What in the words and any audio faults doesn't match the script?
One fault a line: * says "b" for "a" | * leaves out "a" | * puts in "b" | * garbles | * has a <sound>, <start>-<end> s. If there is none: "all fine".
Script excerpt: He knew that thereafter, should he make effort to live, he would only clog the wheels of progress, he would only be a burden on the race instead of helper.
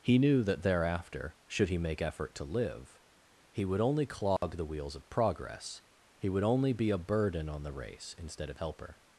* has a dropout, 4.4-4.4 s